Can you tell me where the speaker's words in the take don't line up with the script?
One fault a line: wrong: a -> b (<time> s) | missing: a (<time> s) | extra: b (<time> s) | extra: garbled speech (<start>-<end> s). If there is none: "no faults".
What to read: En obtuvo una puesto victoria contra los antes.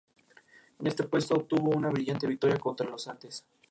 extra: este puesto (0.9 s)
wrong: puesto -> brillante (1.9 s)